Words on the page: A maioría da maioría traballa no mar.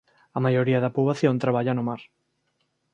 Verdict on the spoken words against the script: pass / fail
fail